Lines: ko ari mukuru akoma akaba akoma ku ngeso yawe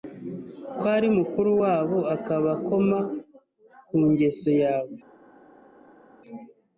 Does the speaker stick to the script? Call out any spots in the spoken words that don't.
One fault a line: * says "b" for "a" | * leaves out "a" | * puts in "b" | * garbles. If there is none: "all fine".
* says "wabo" for "akoma"